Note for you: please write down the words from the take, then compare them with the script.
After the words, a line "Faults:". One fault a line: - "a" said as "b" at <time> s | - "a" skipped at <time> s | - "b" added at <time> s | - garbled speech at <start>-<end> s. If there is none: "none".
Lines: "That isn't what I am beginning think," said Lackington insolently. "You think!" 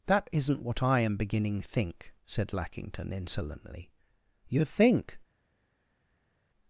"That isn't what I am beginning think," said Lackington insolently. "You think!"
Faults:
none